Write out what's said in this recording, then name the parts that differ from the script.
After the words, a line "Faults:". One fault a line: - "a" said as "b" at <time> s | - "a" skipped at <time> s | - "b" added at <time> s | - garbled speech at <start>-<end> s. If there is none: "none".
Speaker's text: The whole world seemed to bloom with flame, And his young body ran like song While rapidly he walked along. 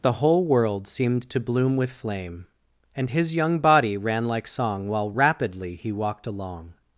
The whole world seemed to bloom with flame, And his young body ran like song While rapidly he walked along.
Faults:
none